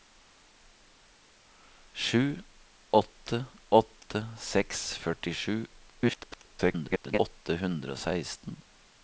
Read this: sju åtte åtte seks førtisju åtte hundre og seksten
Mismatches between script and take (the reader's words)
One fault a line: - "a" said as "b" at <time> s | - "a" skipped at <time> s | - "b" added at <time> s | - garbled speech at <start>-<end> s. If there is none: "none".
- garbled speech at 5.9-7.2 s